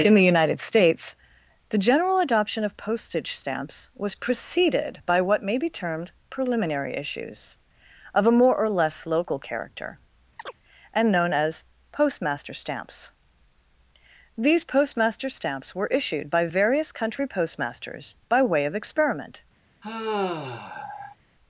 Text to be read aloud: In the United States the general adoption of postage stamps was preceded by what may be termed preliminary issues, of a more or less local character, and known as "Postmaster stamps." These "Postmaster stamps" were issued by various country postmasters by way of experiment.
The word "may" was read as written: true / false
true